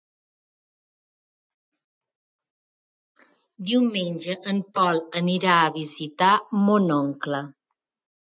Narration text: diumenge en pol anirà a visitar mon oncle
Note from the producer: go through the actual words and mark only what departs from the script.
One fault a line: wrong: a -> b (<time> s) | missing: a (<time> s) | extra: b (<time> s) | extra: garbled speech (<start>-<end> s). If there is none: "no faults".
no faults